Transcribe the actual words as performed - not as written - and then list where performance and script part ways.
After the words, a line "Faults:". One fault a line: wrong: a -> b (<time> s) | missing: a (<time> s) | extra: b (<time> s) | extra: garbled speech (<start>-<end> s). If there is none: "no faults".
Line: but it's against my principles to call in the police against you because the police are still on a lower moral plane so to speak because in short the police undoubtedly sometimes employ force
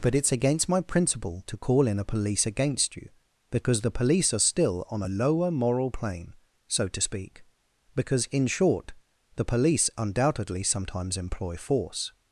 but it's against my principle to call in a police against you because the police are still on a lower moral plane so to speak because in short the police undoubtedly sometimes employ force
Faults:
wrong: principles -> principle (0.8 s)
wrong: the -> a (2.0 s)